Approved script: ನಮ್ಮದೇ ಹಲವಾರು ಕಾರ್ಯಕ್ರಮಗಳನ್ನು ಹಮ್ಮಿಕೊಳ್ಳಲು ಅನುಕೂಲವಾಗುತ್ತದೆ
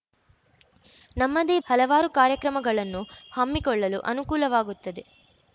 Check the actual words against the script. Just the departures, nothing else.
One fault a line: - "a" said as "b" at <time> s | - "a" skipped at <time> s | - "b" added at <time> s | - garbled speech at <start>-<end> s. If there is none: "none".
none